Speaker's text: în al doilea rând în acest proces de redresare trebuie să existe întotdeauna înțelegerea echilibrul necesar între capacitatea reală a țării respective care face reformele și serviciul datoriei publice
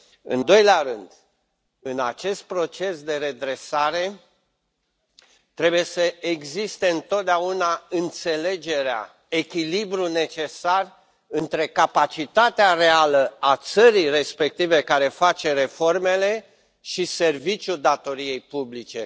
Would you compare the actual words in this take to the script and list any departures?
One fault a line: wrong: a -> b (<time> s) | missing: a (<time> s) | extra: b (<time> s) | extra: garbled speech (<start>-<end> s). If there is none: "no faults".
missing: al (0.4 s)